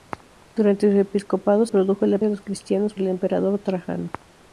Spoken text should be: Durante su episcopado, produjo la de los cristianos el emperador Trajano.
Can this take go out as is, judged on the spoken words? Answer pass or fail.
pass